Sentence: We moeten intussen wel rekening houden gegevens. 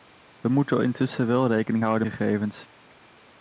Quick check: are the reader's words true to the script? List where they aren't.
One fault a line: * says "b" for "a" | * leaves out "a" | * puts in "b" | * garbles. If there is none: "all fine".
all fine